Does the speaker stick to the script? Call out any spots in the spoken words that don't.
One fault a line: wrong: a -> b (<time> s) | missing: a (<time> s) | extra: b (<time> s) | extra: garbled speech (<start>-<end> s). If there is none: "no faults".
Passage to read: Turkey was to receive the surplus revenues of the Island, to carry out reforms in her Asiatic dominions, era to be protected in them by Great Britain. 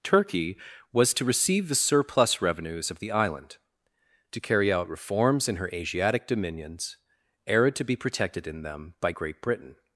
no faults